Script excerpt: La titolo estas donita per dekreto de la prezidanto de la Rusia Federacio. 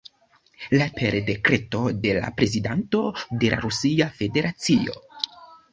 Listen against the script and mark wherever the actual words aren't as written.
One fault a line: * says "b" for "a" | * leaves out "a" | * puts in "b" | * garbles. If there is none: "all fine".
* leaves out "titolo estas donita"